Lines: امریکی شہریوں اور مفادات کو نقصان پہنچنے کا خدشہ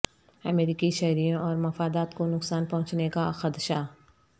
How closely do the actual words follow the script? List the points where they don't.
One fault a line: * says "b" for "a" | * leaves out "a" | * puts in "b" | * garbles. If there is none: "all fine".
all fine